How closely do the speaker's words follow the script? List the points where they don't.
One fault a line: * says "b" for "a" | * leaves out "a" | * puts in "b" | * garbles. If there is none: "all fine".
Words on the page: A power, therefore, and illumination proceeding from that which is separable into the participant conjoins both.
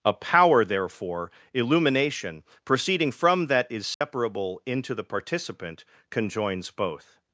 * leaves out "and"
* leaves out "which"